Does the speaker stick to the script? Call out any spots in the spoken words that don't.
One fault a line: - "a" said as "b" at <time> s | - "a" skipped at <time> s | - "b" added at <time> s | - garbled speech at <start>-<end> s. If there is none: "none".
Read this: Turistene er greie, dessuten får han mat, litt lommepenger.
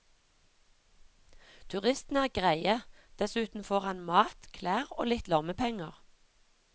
- "klær og" added at 4.6 s